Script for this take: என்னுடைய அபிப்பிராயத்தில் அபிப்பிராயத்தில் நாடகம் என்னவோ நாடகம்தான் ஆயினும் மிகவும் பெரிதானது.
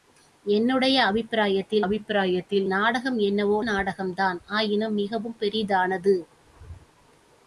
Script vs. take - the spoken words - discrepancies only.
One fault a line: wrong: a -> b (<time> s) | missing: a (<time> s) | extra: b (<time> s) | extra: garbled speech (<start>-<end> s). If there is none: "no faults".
no faults